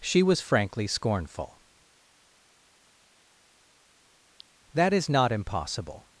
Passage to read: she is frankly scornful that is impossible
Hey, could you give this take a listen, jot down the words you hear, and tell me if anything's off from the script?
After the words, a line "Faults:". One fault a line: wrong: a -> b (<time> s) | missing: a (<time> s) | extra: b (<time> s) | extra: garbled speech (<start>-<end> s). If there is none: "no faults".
she was frankly scornful that is not impossible
Faults:
wrong: is -> was (0.2 s)
extra: not (5.1 s)